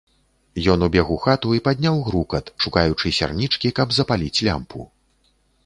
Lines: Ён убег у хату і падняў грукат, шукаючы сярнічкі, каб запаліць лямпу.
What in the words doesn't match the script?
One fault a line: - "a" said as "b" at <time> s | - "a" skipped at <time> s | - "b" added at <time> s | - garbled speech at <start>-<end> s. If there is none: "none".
none